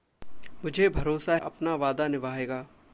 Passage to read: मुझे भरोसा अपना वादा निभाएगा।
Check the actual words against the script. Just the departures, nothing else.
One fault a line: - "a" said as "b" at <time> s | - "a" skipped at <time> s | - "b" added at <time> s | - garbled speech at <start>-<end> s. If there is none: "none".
none